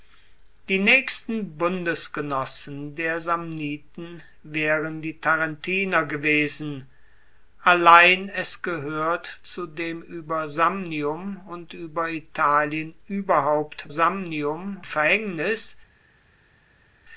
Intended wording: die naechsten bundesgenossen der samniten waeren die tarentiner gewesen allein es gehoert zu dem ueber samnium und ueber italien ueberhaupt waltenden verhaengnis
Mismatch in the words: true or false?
true